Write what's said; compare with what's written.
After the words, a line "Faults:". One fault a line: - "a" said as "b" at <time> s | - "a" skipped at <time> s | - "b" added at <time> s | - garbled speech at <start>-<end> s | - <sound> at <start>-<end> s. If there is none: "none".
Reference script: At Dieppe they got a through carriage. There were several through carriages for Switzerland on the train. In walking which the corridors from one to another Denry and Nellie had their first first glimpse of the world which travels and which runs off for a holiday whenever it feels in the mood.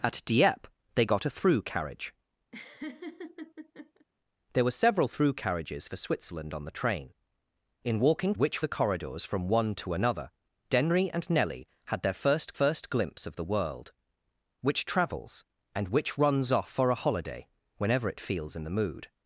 At Dieppe they got a through carriage. There were several through carriages for Switzerland on the train. In walking which the corridors from one to another Denry and Nellie had their first first glimpse of the world which travels and which runs off for a holiday whenever it feels in the mood.
Faults:
- laugh at 2.5-4.1 s